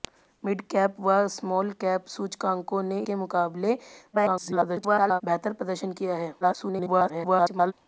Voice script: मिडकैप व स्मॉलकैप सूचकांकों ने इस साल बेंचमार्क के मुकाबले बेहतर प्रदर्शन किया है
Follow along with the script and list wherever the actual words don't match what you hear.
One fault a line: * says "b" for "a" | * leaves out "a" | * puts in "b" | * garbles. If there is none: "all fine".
* leaves out "इस साल बेंचमार्क"
* garbles
* garbles